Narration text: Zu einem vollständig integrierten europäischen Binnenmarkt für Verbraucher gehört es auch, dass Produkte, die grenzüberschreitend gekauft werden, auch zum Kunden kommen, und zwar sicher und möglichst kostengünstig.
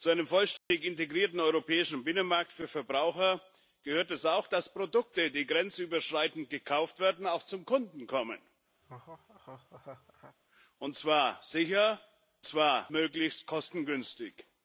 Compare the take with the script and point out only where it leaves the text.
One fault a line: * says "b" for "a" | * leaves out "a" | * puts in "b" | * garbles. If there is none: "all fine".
* says "zwar" for "und"